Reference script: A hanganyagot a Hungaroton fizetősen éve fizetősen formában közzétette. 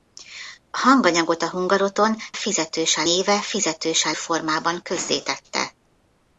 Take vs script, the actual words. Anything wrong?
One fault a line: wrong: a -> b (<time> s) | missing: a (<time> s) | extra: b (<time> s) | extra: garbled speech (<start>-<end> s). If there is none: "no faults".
no faults